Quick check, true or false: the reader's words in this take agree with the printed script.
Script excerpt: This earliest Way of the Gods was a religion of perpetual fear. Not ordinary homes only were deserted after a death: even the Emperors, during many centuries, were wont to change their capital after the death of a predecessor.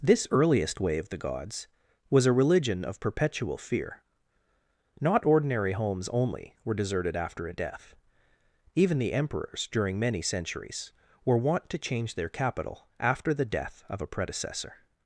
true